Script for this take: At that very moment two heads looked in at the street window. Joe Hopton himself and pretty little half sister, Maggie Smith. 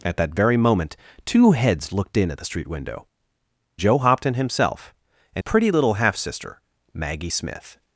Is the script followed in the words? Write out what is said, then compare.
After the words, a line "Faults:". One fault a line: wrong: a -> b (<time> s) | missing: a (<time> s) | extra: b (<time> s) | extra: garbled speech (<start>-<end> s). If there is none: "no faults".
At that very moment two heads looked in at the street window. Joe Hopton himself and pretty little half sister, Maggie Smith.
Faults:
no faults